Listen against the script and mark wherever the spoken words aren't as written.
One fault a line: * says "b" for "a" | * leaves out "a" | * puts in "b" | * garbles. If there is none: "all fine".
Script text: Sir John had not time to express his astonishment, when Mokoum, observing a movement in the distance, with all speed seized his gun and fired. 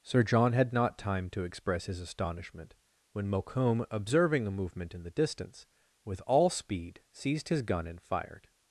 all fine